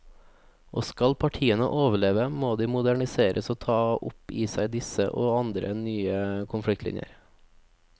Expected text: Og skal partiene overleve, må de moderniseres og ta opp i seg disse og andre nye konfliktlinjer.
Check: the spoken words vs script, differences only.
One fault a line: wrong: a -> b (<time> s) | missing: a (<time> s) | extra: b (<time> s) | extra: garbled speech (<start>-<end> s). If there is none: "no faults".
no faults